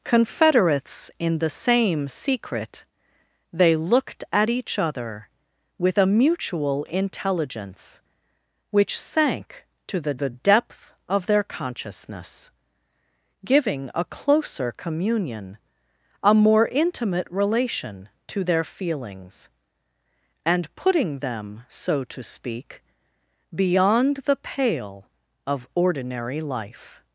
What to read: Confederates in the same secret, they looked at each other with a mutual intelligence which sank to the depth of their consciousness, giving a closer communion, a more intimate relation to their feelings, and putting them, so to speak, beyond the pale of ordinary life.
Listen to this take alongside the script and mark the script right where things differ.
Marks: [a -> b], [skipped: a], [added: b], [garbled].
Confederates in the same secret, they looked at each other with a mutual intelligence which sank to the [added: the] depth of their consciousness, giving a closer communion, a more intimate relation to their feelings, and putting them, so to speak, beyond the pale of ordinary life.